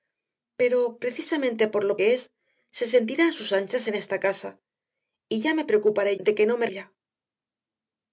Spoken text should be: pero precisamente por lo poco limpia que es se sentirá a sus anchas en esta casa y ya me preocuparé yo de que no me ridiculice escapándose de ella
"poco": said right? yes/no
no